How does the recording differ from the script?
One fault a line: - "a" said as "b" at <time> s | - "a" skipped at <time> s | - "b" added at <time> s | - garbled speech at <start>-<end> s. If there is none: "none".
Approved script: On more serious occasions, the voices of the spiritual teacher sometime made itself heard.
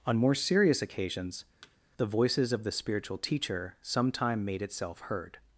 none